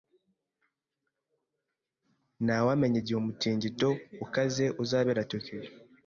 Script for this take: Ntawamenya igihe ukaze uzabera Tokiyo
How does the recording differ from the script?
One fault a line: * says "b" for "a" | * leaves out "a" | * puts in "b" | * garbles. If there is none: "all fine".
* puts in "umutingito"